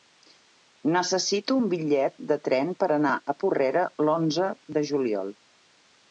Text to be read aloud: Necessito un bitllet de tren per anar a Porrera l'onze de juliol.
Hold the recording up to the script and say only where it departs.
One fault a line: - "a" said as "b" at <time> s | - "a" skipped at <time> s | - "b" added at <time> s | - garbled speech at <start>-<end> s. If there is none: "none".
none